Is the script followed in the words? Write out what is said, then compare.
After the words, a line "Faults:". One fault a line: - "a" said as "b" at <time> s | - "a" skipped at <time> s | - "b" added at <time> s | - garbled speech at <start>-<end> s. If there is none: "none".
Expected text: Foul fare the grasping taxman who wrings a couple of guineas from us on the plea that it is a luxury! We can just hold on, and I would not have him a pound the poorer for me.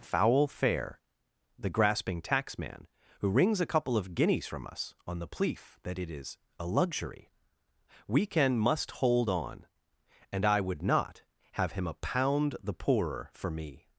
Foul fare the grasping taxman who wrings a couple of guineas from us on the plea that it is a luxury! We can must hold on, and I would not have him a pound the poorer for me.
Faults:
- "just" said as "must" at 8.6 s